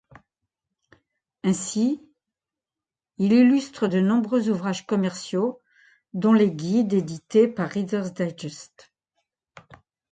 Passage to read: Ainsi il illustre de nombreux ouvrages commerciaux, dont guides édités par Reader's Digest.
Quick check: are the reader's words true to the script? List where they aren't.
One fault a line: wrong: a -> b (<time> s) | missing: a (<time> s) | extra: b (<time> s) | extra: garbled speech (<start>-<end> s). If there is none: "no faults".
extra: les (6.3 s)